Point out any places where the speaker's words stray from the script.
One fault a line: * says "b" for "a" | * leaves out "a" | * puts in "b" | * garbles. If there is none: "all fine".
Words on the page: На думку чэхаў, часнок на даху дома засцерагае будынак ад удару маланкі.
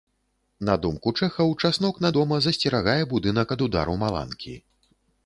* leaves out "даху"